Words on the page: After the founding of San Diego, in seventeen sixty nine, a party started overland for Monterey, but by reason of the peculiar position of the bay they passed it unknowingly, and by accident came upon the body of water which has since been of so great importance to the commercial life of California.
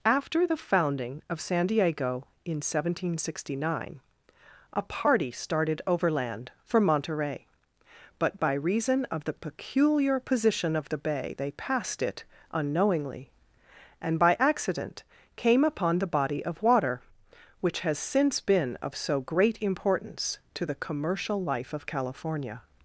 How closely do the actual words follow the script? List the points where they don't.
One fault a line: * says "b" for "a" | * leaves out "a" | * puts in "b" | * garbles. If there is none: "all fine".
all fine